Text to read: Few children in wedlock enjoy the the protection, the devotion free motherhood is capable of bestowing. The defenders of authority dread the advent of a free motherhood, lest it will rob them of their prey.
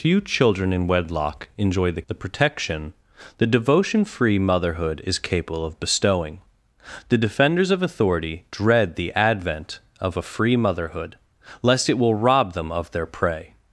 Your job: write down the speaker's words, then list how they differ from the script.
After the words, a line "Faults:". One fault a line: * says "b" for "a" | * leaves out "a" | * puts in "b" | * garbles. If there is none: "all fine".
Few children in wedlock enjoy the the protection, the devotion free motherhood is capable of bestowing. The defenders of authority dread the advent of a free motherhood, lest it will rob them of their prey.
Faults:
all fine